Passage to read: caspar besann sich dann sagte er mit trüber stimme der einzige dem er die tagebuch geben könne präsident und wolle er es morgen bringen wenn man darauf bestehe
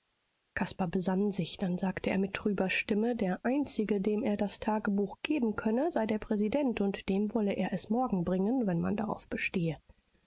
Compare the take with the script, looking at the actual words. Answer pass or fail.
fail